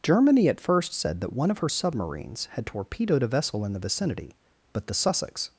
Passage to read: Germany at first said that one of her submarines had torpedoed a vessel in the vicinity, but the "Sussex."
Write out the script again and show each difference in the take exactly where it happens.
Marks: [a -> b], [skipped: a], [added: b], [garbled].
Germany at first said that one of her submarines had torpedoed a vessel in the vicinity, but the "Sussex."